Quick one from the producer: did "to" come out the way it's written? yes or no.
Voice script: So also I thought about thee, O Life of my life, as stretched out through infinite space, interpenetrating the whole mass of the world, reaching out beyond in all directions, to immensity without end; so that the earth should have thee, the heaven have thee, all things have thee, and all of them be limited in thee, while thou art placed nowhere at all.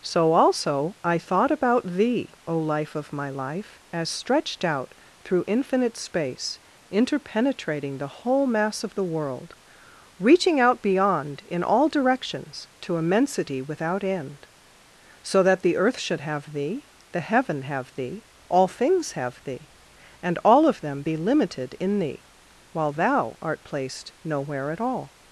yes